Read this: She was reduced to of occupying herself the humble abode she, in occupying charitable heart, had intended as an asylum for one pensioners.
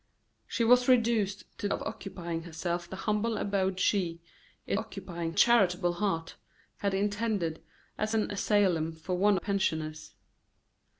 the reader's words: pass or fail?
pass